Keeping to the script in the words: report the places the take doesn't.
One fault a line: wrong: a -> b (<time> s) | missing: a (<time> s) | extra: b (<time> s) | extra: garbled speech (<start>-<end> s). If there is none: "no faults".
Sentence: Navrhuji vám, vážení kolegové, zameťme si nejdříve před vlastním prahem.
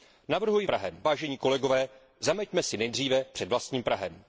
wrong: vám -> prahem (0.7 s)